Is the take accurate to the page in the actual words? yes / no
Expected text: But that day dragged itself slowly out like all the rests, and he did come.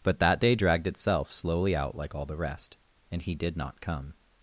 no